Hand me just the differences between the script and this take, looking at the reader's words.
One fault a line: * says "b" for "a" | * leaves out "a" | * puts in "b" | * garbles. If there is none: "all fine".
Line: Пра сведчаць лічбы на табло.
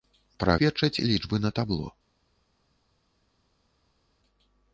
all fine